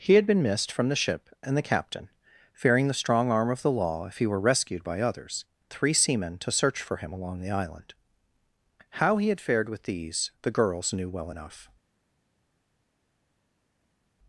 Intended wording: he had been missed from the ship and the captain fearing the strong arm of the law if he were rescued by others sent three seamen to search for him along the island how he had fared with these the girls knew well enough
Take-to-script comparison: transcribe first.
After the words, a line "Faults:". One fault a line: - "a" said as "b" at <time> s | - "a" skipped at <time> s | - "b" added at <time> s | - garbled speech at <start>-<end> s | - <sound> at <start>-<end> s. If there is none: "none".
he had been missed from the ship and the captain fearing the strong arm of the law if he were rescued by others three seamen to search for him along the island how he had fared with these the girls knew well enough
Faults:
- "sent" skipped at 5.5 s